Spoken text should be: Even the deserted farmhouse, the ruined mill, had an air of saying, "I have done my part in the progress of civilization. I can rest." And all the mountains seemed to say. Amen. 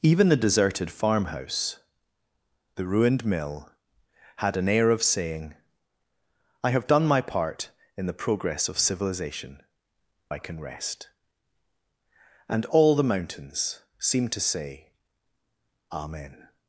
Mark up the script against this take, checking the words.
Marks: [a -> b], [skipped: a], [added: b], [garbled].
Even the deserted farmhouse, the ruined mill, had an air of saying, "I have done my part in the progress of civilization. I can rest." And all the mountains seemed to say. Amen.